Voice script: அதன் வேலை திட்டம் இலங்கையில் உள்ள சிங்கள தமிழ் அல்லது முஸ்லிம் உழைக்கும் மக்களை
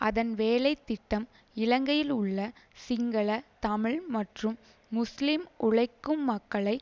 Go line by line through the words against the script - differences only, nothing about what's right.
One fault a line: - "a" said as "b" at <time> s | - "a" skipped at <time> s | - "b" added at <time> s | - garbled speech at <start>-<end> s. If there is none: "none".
- "அல்லது" said as "மற்றும்" at 4.1 s